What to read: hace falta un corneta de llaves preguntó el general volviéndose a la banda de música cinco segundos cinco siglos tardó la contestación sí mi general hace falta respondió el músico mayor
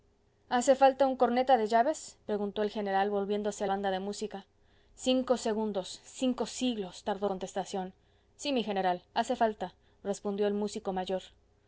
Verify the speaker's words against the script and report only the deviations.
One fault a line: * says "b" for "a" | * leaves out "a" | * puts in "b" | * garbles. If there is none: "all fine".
* leaves out "la"
* leaves out "la"